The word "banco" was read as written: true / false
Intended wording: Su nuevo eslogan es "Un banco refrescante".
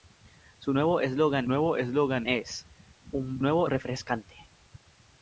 false